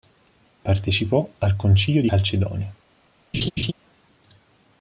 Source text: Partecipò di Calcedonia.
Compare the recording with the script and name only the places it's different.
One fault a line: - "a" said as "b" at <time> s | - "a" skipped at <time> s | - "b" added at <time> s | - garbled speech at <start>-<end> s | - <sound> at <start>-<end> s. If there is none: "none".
- "al Concilio" added at 1.4 s
- laugh at 3.3-3.7 s